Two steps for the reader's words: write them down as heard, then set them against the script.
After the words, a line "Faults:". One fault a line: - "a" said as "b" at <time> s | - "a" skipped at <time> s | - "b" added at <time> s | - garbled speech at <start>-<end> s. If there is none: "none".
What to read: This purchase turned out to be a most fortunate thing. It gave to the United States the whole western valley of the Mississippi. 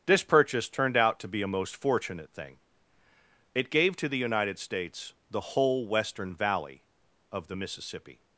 This purchase turned out to be a most fortunate thing. It gave to the United States the whole western valley of the Mississippi.
Faults:
none